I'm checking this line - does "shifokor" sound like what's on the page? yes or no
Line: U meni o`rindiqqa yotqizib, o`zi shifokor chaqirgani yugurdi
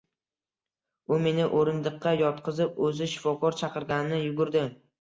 yes